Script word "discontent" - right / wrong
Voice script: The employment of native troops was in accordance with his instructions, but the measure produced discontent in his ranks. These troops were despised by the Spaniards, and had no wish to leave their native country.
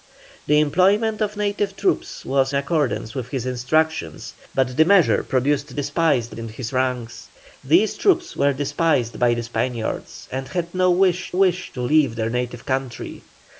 wrong